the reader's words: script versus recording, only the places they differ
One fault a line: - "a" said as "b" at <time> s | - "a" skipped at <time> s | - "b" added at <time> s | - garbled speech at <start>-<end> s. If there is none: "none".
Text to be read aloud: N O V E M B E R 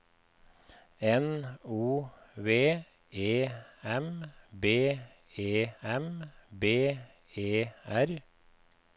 - "M B E" added at 5.8 s